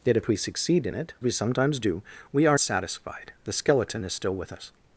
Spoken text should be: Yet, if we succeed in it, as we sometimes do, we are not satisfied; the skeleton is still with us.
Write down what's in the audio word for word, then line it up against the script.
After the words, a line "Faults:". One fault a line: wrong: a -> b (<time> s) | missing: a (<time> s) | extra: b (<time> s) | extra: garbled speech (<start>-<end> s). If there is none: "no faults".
Yet, if we succeed in it, we sometimes do, we are satisfied; the skeleton is still with us.
Faults:
missing: as (1.1 s)
missing: not (2.6 s)